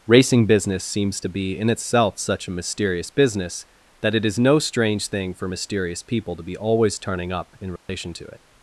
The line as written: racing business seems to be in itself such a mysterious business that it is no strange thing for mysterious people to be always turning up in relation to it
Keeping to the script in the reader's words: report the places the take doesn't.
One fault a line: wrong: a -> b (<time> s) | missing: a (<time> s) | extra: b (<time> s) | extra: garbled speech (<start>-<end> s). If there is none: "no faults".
no faults